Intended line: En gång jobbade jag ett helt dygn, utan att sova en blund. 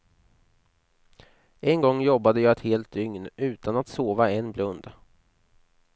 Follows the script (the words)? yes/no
yes